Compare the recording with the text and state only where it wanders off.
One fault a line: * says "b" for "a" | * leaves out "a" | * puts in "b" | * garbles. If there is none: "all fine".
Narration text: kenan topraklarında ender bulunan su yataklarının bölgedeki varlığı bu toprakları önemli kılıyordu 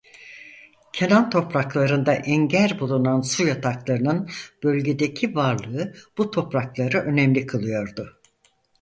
all fine